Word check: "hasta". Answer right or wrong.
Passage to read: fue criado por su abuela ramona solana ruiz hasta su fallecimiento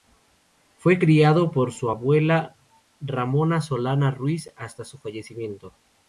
right